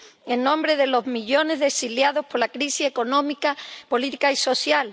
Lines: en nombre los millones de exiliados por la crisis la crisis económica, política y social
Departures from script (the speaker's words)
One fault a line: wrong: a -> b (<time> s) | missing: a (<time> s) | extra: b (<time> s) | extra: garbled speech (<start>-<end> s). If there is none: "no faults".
extra: de (0.8 s)
missing: la crisis (2.9 s)